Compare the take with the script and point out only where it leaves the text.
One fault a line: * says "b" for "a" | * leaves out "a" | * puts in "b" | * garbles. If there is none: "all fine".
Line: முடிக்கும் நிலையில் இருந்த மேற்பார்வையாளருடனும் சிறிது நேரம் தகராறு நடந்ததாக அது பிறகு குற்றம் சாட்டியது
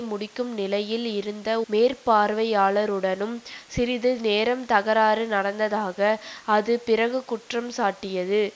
all fine